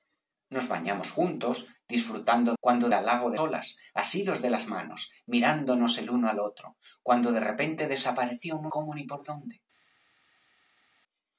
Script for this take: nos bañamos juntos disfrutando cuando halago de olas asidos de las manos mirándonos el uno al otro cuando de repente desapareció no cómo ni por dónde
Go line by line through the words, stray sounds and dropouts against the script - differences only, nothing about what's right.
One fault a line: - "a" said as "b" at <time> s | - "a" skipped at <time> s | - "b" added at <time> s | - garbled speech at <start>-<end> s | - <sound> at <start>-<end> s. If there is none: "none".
none